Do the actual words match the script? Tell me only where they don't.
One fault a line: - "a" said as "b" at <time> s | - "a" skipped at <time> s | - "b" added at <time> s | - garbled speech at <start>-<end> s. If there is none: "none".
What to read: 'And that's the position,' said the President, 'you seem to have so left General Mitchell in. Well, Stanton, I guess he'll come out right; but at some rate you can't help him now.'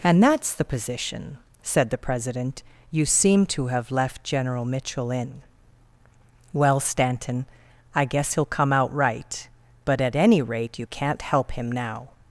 - "so" skipped at 3.9 s
- "some" said as "any" at 10.2 s